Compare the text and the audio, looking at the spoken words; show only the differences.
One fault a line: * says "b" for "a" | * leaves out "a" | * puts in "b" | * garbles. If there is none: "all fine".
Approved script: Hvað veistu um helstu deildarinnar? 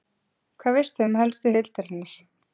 all fine